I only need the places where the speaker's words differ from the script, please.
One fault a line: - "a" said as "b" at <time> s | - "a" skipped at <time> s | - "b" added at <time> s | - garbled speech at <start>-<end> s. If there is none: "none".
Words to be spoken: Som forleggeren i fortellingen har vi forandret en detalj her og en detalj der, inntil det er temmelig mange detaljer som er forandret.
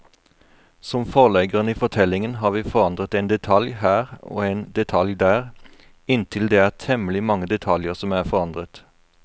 none